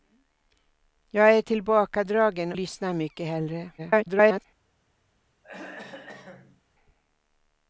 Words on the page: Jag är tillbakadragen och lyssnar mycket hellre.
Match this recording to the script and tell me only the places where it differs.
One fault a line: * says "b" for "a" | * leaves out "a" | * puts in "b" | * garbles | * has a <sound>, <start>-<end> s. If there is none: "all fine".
* leaves out "och"
* garbles
* has a throat clearing, 5.4-6.6 s